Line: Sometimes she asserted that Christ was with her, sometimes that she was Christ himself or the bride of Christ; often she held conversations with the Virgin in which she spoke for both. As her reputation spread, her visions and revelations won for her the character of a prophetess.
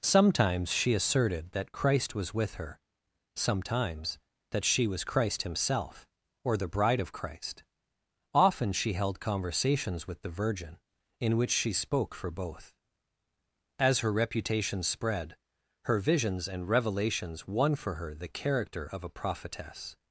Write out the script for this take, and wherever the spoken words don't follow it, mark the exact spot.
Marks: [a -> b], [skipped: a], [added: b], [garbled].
Sometimes she asserted that Christ was with her, sometimes that she was Christ himself or the bride of Christ; often she held conversations with the Virgin in which she spoke for both. As her reputation spread, her visions and revelations won for her the character of a prophetess.